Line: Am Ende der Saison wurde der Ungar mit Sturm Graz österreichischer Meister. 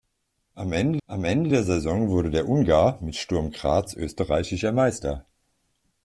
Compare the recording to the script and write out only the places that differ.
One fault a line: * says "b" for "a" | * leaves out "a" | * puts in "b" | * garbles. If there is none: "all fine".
* puts in "am Ende"